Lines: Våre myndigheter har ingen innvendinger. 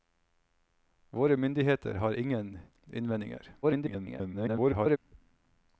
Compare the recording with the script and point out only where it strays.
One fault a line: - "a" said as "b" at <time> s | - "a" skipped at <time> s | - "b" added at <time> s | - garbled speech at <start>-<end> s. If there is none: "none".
- garbled speech at 3.6-5.0 s